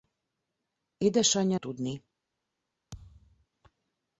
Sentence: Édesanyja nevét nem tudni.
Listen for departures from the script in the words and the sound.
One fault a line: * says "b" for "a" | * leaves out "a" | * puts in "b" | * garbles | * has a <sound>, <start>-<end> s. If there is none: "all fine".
* leaves out "nevét nem"
* has a thud, 2.9-3.5 s